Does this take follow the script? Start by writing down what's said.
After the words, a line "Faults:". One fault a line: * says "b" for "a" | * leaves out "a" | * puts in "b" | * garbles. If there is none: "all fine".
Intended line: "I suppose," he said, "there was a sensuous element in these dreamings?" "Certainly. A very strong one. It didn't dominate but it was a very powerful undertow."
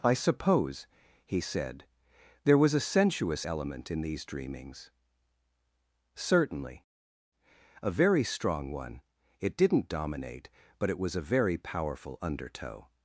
"I suppose," he said, "there was a sensuous element in these dreamings?" "Certainly. A very strong one. It didn't dominate but it was a very powerful undertow."
Faults:
all fine